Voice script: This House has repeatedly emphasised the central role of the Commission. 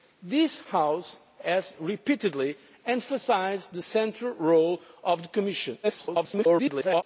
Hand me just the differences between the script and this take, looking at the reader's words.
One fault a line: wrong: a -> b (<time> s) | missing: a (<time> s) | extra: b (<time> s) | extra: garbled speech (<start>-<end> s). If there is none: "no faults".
extra: garbled speech (5.8-7.0 s)